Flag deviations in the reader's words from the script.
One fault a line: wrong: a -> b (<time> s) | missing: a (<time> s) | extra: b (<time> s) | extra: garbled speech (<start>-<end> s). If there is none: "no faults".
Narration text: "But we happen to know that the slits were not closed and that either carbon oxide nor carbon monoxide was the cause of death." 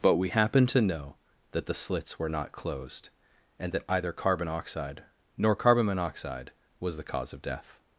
no faults